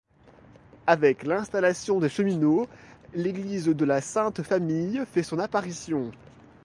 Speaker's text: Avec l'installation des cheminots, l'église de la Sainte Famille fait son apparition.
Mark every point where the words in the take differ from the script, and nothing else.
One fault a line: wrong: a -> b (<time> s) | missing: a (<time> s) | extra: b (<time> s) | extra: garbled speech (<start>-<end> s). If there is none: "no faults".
no faults